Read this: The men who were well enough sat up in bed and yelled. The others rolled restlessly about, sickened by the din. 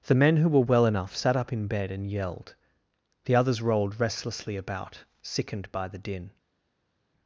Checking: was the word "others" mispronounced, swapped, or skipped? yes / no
no